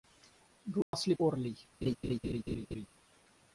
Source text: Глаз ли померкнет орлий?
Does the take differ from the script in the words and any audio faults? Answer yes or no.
yes